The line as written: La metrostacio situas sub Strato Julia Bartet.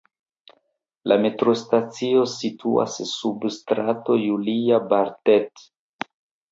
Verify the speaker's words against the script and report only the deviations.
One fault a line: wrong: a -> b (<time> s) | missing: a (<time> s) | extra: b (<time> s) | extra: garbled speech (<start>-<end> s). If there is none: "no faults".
no faults